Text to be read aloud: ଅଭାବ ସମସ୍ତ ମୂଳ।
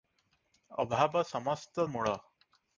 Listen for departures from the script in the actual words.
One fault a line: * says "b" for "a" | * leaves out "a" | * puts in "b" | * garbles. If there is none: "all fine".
all fine